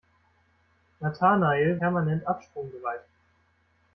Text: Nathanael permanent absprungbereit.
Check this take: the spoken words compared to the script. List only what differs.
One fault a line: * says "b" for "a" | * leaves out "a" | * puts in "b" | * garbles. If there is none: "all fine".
all fine